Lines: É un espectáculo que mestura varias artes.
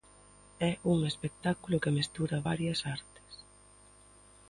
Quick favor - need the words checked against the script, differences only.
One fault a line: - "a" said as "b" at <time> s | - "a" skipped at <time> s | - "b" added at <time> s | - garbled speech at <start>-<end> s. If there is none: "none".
none